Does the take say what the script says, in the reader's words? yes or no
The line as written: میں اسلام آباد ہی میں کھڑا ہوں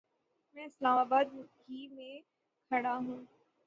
yes